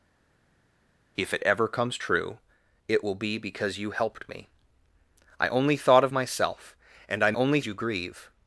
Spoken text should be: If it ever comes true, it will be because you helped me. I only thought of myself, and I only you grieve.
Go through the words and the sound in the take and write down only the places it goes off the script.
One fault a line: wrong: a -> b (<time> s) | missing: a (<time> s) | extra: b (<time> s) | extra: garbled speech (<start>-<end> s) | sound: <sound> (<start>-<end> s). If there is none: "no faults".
no faults